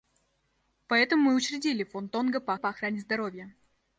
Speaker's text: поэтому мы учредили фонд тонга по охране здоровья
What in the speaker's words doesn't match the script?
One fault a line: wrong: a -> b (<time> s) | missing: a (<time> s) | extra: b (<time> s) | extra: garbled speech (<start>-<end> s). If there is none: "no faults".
extra: по (2.5 s)